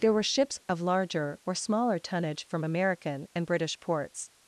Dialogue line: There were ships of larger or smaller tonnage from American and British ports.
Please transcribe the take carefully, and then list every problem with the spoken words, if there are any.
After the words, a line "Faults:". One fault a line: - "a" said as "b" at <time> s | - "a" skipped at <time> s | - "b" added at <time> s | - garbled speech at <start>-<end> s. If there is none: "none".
There were ships of larger or smaller tonnage from American and British ports.
Faults:
none